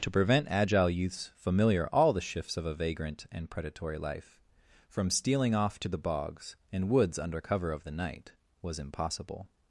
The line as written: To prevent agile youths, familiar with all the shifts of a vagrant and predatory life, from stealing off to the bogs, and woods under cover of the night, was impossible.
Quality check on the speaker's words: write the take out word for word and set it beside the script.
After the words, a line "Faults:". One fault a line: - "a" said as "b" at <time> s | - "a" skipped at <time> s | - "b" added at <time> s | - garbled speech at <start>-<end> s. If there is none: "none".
To prevent agile youths, familiar all the shifts of a vagrant and predatory life, from stealing off to the bogs, and woods under cover of the night, was impossible.
Faults:
- "with" skipped at 1.9 s